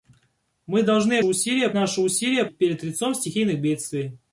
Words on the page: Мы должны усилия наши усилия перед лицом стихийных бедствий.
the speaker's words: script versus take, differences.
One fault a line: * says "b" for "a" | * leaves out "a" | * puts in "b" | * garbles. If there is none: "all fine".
all fine